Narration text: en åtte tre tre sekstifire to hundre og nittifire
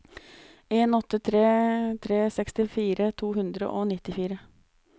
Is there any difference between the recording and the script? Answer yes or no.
no